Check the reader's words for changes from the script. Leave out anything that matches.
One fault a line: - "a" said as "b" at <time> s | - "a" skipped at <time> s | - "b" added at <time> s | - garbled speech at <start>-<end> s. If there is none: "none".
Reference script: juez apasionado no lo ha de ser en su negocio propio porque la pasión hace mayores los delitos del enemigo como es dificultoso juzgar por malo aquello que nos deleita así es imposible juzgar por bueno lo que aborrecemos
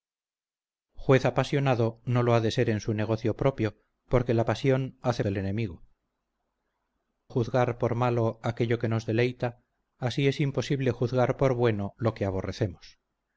- "mayores los delitos" skipped at 5.3 s
- "como es dificultoso" skipped at 5.8 s